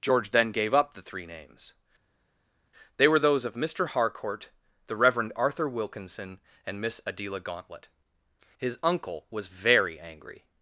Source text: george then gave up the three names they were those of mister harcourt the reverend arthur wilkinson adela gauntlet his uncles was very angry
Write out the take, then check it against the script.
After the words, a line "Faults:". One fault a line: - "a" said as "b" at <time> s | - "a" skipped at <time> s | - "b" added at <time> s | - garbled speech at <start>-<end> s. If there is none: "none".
george then gave up the three names they were those of mister harcourt the reverend arthur wilkinson and miss adela gauntlet his uncle was very angry
Faults:
- "and miss" added at 6.7 s
- "uncles" said as "uncle" at 8.8 s